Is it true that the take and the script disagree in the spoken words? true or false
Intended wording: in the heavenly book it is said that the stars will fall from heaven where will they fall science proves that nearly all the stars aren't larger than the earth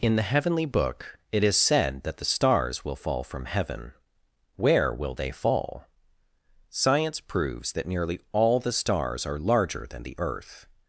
true